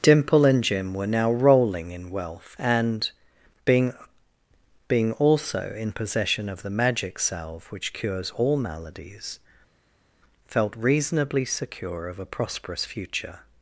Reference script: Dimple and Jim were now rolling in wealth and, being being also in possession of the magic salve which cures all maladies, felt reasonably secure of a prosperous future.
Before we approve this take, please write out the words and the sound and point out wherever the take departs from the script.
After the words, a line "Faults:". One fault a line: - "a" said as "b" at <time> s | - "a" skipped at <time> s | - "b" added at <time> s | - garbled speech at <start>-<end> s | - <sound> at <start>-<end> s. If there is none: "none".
Dimple and Jim were now rolling in wealth and, being being also in possession of the magic salve which cures all maladies, felt reasonably secure of a prosperous future.
Faults:
none